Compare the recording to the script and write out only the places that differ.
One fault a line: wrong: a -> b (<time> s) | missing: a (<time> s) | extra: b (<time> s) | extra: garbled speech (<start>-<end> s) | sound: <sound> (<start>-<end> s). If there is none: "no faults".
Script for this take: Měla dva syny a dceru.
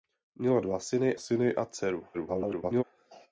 extra: syny (1.2 s)
extra: garbled speech (2.1-2.8 s)